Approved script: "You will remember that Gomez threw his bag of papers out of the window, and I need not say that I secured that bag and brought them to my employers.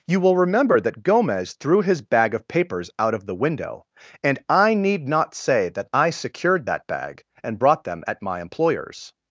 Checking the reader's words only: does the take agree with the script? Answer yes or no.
no